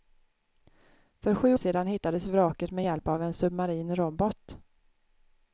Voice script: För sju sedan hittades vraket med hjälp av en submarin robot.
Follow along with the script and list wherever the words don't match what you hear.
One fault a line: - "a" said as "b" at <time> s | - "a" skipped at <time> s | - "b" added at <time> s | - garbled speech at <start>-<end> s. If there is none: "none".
none